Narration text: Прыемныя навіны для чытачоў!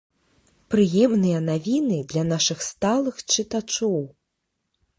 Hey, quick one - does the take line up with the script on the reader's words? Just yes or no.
no